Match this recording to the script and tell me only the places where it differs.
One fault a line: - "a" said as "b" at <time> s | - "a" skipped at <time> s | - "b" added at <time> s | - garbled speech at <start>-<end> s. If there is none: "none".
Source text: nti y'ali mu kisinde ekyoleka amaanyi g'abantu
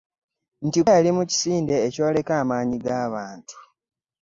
none